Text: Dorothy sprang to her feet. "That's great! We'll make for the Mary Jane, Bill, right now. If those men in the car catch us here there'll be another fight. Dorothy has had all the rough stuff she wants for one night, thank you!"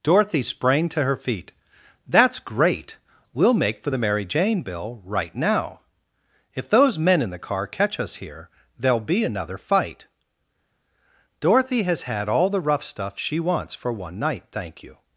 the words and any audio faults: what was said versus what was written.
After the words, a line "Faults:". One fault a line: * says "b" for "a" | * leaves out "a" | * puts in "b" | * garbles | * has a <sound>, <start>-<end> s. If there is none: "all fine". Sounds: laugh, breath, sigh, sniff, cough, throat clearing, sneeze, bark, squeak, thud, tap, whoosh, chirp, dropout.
Dorothy sprang to her feet. "That's great! We'll make for the Mary Jane, Bill, right now. If those men in the car catch us here there'll be another fight. Dorothy has had all the rough stuff she wants for one night, thank you!"
Faults:
all fine